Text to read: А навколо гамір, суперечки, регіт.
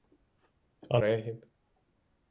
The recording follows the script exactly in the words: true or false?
false